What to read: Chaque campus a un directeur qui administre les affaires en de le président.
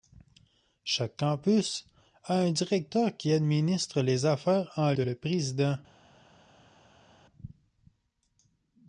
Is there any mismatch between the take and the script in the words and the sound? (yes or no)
no